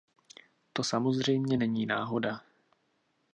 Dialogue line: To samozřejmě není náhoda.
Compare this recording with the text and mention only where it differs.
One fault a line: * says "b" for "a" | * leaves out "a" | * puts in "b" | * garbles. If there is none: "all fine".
all fine